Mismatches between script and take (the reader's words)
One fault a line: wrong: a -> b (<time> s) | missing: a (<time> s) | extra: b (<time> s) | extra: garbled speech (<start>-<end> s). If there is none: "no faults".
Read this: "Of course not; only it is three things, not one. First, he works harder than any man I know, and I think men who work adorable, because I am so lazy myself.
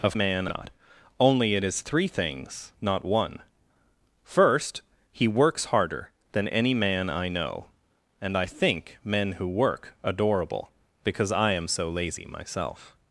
wrong: course -> man (0.1 s)